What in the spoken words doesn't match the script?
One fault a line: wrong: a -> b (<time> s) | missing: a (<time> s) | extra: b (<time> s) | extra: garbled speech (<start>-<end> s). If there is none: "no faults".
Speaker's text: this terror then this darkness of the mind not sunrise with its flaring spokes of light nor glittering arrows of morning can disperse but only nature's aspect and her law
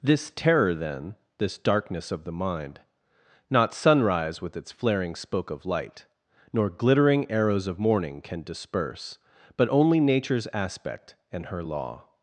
wrong: spokes -> spoke (5.2 s)